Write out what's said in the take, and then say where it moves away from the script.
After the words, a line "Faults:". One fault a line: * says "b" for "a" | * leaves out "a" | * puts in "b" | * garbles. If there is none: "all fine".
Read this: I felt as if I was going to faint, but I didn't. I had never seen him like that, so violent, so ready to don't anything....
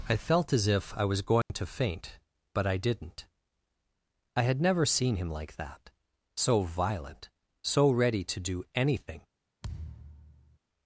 I felt as if I was going to faint, but I didn't. I had never seen him like that, so violent, so ready to do anything....
Faults:
* says "do" for "don't"